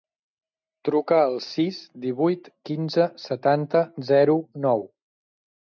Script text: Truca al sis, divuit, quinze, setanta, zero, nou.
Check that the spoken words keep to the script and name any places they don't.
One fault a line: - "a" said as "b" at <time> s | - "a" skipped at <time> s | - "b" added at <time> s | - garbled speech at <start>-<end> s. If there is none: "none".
none